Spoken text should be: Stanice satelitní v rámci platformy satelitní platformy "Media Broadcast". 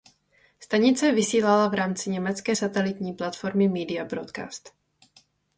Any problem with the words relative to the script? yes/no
yes